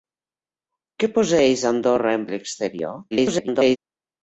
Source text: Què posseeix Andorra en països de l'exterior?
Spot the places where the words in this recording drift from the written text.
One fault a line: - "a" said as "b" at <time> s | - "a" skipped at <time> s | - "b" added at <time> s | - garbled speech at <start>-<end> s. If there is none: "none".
- "països" skipped at 2.3 s
- garbled speech at 3.1-3.8 s